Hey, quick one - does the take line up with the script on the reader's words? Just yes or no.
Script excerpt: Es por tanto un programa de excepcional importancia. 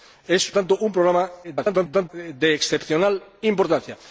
no